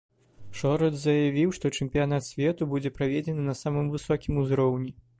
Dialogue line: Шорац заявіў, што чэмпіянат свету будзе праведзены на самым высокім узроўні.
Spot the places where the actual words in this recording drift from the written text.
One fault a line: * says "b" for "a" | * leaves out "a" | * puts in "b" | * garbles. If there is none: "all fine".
all fine